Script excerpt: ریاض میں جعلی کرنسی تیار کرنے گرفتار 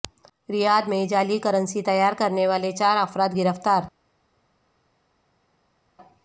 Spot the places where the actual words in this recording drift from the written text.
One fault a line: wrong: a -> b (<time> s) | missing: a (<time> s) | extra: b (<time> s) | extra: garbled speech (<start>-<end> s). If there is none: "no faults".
extra: والے چار افراد (2.5 s)